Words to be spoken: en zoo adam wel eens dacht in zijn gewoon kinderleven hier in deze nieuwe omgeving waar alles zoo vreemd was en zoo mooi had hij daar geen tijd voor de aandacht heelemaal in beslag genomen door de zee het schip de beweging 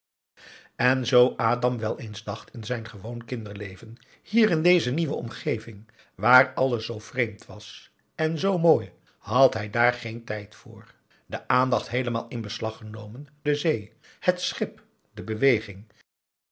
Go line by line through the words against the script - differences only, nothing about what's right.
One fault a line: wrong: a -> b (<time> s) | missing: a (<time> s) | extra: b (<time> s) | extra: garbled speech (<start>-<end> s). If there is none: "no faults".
missing: door (13.3 s)